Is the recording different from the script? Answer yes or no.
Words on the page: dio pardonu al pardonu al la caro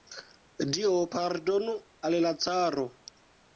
yes